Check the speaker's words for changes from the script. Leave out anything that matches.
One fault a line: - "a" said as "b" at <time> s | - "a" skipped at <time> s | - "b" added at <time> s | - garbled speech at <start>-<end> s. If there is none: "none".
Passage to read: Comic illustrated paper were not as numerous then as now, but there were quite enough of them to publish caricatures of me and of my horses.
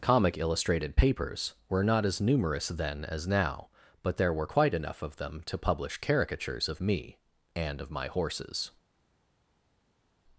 - "paper" said as "papers" at 0.9 s